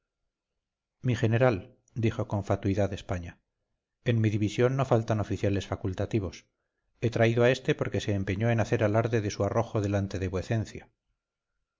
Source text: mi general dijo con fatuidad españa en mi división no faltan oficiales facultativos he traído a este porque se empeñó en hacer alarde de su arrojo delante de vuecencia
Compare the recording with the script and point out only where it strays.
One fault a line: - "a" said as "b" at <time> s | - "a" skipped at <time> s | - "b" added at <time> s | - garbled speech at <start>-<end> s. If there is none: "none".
none